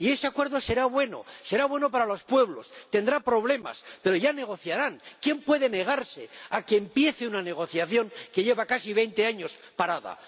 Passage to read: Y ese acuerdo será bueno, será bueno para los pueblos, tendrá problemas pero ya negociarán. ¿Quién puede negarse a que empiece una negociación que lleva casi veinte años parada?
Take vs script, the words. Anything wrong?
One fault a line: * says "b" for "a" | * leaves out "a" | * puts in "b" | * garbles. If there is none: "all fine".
all fine